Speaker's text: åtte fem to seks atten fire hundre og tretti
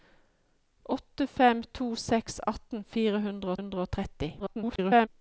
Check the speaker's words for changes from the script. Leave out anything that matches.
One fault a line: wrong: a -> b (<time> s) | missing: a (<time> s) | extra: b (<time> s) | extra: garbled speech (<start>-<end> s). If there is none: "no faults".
extra: hundre (3.6 s)
extra: garbled speech (4.4-5.1 s)